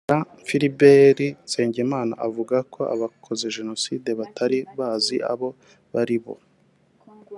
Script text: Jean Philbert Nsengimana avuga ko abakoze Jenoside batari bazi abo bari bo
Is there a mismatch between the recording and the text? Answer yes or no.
no